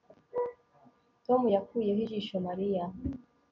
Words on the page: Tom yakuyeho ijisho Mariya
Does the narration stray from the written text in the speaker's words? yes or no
no